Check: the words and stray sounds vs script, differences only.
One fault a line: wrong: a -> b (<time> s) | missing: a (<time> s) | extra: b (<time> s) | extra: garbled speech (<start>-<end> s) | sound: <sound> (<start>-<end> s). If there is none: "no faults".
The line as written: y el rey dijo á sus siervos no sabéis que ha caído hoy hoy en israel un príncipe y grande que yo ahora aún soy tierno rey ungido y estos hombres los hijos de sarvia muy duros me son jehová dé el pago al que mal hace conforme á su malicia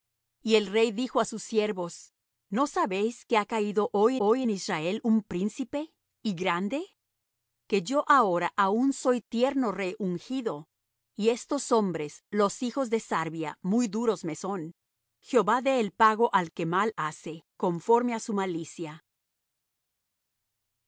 no faults